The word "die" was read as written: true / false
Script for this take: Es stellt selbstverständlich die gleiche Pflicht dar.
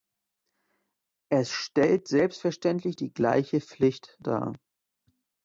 true